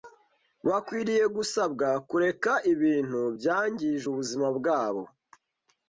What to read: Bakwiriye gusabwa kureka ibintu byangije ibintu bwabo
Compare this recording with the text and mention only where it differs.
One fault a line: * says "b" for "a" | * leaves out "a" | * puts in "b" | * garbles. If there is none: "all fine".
* says "ubuzima" for "ibintu"